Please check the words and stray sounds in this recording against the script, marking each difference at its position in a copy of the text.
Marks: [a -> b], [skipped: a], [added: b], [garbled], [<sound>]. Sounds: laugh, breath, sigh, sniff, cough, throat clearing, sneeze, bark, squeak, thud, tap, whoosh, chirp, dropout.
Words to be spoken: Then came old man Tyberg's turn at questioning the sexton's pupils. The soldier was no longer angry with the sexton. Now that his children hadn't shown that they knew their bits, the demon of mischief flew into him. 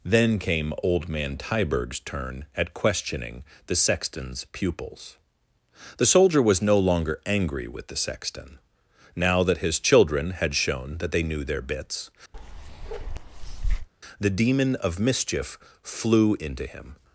Then came old man Tyberg's turn at questioning the sexton's pupils. The soldier was no longer angry with the sexton. Now that his children [hadn't -> had] shown that they knew their bits, [bark] the demon of mischief flew into him.